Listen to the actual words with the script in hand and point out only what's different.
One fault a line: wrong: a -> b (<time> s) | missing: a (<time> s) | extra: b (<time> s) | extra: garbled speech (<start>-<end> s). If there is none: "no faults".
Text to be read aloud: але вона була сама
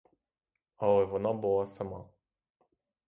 no faults